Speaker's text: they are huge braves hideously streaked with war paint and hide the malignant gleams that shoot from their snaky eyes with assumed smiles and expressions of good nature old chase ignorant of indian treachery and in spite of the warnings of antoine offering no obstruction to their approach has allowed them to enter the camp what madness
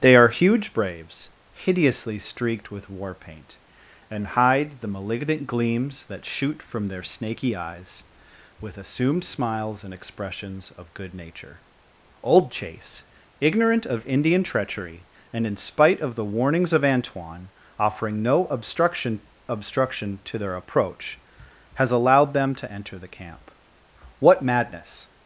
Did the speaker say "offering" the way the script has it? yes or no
yes